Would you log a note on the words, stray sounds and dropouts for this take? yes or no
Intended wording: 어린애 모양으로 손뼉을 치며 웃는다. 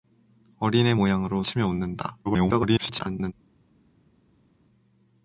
yes